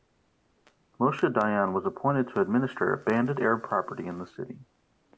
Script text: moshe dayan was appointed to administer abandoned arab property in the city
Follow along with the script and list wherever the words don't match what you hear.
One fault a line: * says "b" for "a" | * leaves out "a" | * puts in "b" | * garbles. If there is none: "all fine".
all fine